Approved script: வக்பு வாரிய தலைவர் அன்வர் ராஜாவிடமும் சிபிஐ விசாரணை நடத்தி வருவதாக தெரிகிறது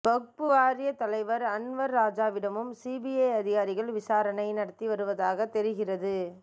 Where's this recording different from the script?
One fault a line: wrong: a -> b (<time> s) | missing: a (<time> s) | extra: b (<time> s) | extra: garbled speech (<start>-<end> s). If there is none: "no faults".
extra: அதிகாரிகள் (3.3 s)